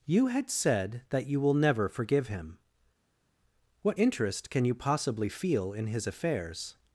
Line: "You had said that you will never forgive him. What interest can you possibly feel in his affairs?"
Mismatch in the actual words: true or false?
false